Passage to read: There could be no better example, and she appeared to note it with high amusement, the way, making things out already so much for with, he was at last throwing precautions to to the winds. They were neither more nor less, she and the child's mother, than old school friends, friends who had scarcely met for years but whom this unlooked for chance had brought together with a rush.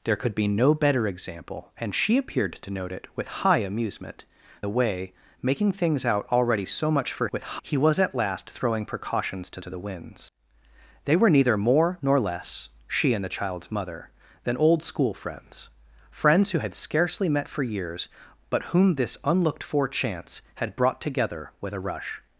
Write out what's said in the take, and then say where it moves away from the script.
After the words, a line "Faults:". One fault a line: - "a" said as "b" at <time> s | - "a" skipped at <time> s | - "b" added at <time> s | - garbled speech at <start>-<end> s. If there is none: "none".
There could be no better example, and she appeared to note it with high amusement, the way, making things out already so much for with, he was at last throwing precautions to to the winds. They were neither more nor less, she and the child's mother, than old school friends, friends who had scarcely met for years but whom this unlooked for chance had brought together with a rush.
Faults:
none